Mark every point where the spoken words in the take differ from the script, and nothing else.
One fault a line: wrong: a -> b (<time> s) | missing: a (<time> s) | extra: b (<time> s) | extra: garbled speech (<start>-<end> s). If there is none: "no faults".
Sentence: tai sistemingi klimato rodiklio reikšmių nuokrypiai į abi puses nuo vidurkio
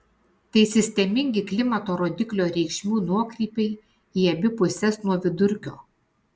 no faults